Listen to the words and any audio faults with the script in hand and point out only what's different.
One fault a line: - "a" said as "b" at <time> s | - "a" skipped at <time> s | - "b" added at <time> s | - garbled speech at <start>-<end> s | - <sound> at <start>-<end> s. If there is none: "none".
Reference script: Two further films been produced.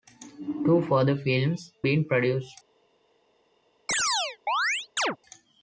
- chirp at 3.9-5.2 s